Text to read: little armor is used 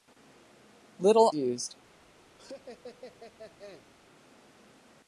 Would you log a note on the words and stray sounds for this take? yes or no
yes